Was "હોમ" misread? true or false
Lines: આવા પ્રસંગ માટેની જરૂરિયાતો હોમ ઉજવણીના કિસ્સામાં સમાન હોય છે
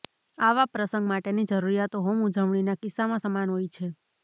false